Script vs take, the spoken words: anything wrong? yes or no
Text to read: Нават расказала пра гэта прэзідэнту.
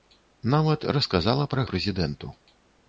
yes